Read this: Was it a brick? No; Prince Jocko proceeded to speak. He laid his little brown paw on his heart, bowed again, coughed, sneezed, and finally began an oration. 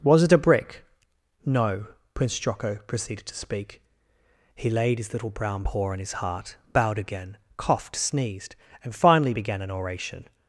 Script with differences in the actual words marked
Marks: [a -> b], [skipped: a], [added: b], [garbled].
Was it a brick? No; Prince Jocko proceeded to speak. He laid his little brown paw on his heart, bowed again, coughed, sneezed, and finally began an oration.